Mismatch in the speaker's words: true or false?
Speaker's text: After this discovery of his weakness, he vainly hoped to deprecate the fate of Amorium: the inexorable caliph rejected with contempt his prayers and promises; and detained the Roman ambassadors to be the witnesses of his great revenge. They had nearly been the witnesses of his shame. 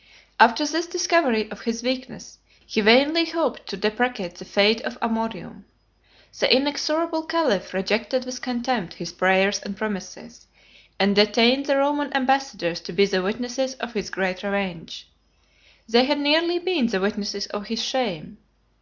false